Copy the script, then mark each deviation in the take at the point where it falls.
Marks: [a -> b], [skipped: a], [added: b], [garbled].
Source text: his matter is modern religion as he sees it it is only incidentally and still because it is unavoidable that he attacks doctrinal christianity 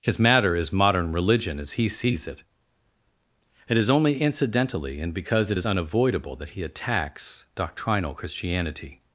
his matter is modern religion as he sees it it is only incidentally and [skipped: still] because it is unavoidable that he attacks doctrinal christianity